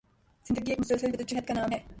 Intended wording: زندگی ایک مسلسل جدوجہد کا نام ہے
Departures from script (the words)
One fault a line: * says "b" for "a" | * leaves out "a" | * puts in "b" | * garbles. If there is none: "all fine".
all fine